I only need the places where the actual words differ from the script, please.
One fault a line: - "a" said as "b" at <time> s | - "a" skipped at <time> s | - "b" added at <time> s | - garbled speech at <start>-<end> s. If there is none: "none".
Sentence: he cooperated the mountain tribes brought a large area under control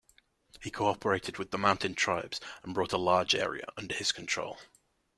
- "with" added at 1.4 s
- "and" added at 2.6 s
- "his" added at 3.9 s